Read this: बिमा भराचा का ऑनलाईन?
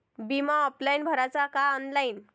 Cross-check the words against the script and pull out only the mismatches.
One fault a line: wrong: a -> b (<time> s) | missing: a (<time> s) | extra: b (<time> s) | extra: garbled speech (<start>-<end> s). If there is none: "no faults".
extra: ऑफलाईन (0.7 s)